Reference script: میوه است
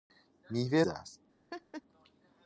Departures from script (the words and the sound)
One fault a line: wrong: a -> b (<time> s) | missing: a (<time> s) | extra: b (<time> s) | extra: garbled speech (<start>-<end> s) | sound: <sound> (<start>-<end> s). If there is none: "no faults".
sound: laugh (1.5-1.8 s)